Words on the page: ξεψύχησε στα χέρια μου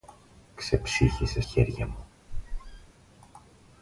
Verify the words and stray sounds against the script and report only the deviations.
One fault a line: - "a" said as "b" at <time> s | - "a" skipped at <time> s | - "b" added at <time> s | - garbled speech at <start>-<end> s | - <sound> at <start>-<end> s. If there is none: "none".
- "στα" skipped at 1.4 s
- squeak at 2.3-2.9 s